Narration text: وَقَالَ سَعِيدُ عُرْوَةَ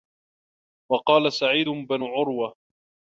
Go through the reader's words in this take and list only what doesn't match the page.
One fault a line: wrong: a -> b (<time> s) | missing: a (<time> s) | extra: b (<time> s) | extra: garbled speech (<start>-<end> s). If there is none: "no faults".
extra: بْنُ (1.6 s)